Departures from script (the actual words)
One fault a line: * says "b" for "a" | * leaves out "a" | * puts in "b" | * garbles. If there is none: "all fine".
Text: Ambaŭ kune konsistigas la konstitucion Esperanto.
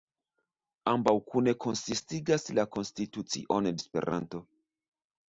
all fine